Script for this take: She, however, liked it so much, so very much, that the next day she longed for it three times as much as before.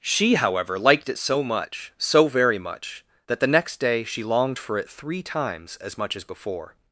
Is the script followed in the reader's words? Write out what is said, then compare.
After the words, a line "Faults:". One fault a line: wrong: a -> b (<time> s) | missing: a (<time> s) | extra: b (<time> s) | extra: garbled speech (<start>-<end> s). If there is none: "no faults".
She, however, liked it so much, so very much, that the next day she longed for it three times as much as before.
Faults:
no faults